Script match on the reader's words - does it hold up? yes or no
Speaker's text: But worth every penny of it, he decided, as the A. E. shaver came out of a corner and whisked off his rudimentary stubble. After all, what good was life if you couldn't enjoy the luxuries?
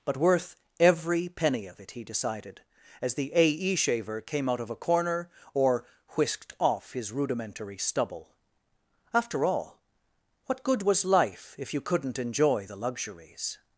no